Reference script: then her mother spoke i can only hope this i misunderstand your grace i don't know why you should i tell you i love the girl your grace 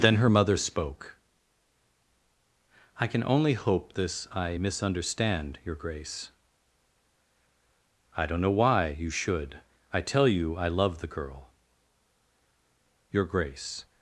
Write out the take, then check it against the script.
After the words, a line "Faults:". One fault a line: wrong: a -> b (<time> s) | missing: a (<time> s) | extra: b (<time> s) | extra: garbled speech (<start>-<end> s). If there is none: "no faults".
then her mother spoke i can only hope this i misunderstand your grace i don't know why you should i tell you i love the girl your grace
Faults:
no faults